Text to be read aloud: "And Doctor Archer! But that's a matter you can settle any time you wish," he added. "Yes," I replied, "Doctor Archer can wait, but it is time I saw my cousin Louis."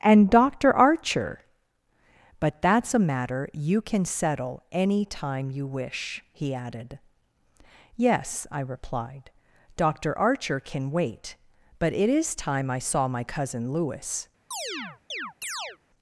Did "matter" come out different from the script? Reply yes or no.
no